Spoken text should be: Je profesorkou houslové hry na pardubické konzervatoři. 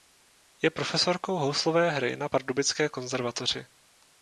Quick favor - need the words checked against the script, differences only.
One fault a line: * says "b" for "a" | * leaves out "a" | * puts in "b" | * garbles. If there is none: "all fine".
all fine